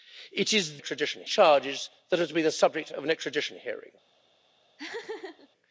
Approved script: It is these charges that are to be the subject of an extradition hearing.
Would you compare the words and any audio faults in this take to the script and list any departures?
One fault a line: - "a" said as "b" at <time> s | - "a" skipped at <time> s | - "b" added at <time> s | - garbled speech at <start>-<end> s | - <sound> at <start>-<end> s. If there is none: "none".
- "these" said as "extradition" at 0.8 s
- laugh at 4.8-5.5 s